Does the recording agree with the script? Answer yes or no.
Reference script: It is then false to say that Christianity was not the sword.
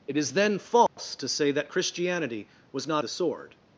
yes